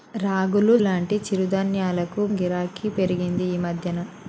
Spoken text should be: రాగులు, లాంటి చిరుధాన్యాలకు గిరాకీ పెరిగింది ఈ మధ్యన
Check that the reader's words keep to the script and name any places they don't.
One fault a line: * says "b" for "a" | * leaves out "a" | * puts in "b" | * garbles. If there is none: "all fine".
all fine